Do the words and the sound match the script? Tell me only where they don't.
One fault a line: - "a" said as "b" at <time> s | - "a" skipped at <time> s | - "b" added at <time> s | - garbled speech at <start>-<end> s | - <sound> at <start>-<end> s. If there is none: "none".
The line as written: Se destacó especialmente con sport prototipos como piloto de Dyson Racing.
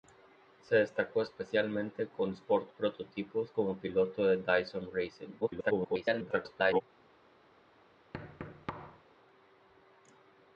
- garbled speech at 5.4-6.8 s
- thud at 8.1-9.0 s